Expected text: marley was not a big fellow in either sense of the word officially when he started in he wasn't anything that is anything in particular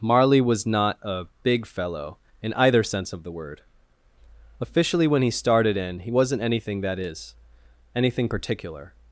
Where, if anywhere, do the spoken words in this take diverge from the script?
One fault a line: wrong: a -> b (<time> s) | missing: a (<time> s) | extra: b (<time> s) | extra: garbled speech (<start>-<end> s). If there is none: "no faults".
missing: in (8.3 s)